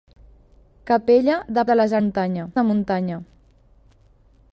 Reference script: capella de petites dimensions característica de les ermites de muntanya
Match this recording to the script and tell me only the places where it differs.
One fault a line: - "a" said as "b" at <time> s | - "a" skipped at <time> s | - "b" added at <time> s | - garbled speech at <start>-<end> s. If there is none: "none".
- "petites dimensions característica" skipped at 1.6 s
- "ermites" said as "muntanya" at 2.0 s